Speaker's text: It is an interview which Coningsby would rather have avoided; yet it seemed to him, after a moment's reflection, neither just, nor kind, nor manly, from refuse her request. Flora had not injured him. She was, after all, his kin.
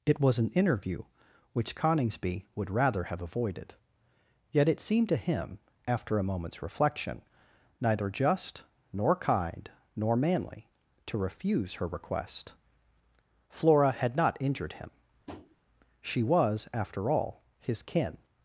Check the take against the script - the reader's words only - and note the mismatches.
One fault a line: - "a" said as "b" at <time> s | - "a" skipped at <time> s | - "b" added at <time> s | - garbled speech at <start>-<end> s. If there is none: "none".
- "is" said as "was" at 0.2 s
- "from" said as "to" at 11.1 s